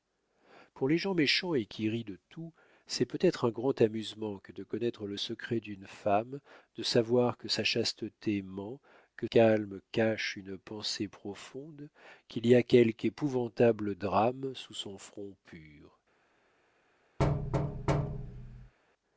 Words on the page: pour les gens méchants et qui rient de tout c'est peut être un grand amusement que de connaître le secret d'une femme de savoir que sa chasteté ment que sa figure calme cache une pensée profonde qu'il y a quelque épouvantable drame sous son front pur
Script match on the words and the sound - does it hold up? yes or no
no